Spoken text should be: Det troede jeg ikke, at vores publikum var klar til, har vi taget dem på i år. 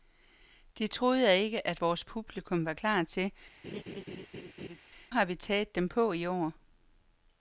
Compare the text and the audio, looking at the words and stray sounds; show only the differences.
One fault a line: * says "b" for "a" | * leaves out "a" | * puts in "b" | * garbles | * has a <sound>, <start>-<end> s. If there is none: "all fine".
* has a laugh, 3.6-4.8 s